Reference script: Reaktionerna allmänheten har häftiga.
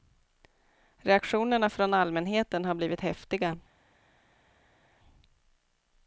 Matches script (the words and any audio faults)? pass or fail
fail